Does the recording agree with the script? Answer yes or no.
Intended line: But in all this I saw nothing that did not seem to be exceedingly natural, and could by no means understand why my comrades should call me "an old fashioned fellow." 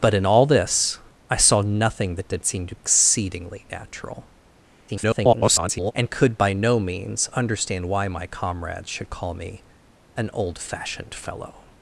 no